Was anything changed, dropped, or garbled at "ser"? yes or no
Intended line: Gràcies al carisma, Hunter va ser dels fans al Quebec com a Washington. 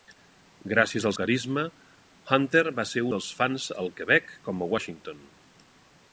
no